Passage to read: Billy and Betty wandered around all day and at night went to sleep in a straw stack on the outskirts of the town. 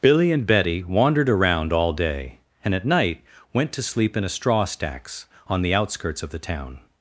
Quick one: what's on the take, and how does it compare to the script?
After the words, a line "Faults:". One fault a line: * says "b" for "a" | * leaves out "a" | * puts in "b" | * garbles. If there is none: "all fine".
Billy and Betty wandered around all day and at night went to sleep in a straw stacks on the outskirts of the town.
Faults:
* says "stacks" for "stack"